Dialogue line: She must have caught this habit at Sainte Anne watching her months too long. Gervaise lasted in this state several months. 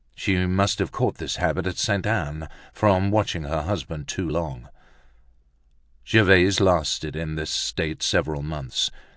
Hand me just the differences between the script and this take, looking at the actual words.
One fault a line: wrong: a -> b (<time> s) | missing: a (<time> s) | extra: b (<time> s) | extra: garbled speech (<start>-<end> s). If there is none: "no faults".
extra: from (2.7 s)
wrong: months -> husband (3.6 s)